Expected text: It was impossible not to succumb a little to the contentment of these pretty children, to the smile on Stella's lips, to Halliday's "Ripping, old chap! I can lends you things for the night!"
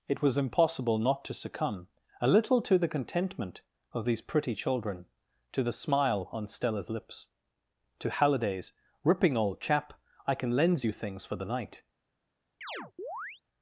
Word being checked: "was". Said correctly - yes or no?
yes